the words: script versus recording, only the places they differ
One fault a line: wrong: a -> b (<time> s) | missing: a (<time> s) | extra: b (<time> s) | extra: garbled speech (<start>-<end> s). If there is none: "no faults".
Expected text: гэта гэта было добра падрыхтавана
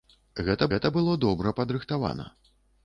no faults